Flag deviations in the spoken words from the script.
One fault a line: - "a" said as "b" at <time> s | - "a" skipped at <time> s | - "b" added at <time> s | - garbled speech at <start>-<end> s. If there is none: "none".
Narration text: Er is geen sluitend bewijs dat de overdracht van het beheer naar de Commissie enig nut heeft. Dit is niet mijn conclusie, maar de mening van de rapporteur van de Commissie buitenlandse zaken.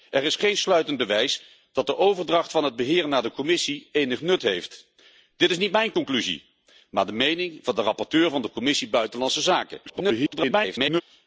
- garbled speech at 9.9-11.0 s